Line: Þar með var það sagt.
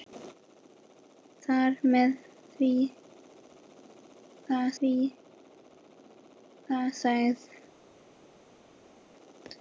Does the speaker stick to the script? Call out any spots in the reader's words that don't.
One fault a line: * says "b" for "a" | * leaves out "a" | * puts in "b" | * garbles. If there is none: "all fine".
* puts in "var það"